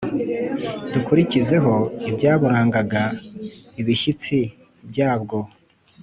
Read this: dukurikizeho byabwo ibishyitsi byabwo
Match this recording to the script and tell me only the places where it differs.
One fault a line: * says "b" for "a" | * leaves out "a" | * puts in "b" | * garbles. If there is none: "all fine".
* says "ibyaburangaga" for "byabwo"